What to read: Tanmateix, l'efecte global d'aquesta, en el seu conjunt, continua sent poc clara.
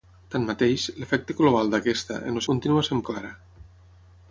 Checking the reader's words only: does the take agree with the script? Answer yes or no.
no